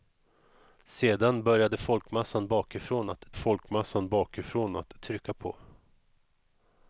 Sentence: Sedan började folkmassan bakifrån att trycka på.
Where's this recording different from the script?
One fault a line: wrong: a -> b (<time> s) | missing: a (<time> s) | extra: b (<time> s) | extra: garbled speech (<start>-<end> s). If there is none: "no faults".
extra: folkmassan bakifrån att (3.3 s)